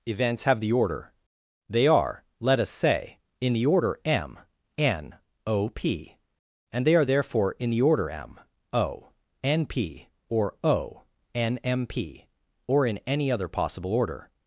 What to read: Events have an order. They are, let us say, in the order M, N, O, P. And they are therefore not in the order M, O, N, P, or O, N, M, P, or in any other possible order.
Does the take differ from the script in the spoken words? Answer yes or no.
yes